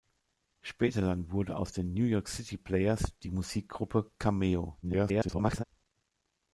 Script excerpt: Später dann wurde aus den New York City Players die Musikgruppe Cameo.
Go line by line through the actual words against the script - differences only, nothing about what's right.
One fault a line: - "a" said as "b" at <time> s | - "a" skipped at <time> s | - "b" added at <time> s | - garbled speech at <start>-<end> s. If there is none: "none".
- garbled speech at 4.8-5.6 s